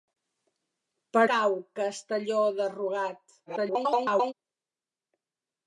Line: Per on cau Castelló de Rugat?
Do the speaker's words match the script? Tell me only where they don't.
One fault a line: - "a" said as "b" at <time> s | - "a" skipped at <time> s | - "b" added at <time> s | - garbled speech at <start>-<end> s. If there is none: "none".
- "on" skipped at 1.2 s
- garbled speech at 3.5-4.3 s